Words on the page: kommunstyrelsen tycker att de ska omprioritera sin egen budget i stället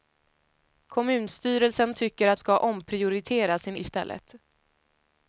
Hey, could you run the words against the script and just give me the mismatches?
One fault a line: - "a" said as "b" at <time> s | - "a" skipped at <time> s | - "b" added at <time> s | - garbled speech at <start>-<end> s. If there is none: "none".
- "de" skipped at 2.4 s
- "egen budget" skipped at 3.8 s